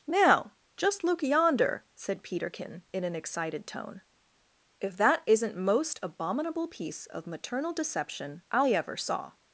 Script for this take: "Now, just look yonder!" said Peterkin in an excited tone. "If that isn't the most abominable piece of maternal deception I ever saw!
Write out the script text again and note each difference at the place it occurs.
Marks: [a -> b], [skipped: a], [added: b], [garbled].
"Now, just look yonder!" said Peterkin in an excited tone. "If that isn't [skipped: the] most abominable piece of maternal deception I ever saw!